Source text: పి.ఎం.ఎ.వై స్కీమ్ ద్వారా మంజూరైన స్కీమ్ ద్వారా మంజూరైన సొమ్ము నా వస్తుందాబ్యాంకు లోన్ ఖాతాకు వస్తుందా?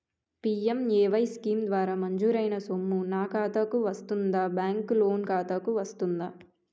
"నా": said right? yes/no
no